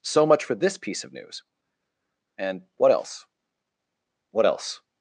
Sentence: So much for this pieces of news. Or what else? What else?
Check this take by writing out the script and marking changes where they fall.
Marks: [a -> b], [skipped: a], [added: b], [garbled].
So much for this [pieces -> piece] of news. [Or -> And] what else? What else?